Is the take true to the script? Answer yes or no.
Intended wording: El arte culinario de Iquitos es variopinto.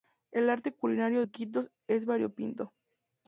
no